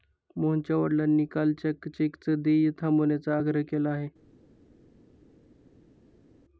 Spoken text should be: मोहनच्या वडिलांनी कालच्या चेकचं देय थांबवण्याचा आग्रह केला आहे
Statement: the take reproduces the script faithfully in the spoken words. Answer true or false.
true